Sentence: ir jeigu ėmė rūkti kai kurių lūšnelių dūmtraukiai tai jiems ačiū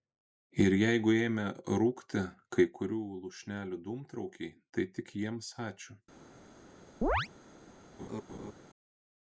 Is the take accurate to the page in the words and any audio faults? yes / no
no